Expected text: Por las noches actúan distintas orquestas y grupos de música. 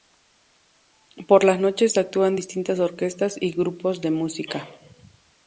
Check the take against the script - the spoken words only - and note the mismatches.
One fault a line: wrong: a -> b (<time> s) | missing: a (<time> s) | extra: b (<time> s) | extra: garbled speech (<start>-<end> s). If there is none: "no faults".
no faults